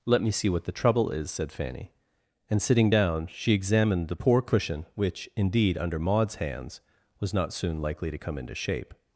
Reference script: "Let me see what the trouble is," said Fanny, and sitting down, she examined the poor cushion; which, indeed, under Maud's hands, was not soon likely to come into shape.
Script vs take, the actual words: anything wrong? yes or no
no